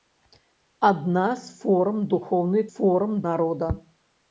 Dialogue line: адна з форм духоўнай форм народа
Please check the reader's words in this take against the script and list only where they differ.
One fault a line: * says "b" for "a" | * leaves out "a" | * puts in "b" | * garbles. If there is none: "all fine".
all fine